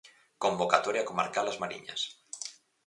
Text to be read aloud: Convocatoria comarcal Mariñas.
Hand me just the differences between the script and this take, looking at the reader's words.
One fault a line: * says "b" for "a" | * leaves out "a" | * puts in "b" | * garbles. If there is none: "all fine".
* puts in "As"